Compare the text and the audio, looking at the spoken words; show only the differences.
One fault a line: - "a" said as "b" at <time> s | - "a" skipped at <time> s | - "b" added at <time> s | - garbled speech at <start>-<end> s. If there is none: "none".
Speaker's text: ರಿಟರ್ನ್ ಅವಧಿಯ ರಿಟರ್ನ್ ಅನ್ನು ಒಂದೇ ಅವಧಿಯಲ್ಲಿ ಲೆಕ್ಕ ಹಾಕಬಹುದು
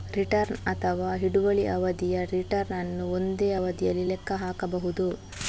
- "ಅಥವಾ ಹಿಡುವಳಿ" added at 0.7 s